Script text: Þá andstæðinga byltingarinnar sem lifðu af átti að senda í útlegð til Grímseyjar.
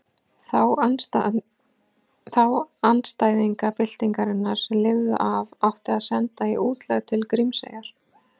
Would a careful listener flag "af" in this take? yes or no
no